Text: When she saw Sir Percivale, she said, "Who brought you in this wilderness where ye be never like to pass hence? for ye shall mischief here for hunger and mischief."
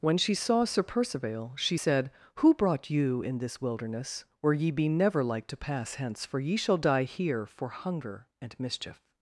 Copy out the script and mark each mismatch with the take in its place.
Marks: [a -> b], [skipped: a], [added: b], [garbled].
When she saw Sir Percivale, she said, "Who brought you in this wilderness where ye be never like to pass hence? for ye shall [mischief -> die] here for hunger and mischief."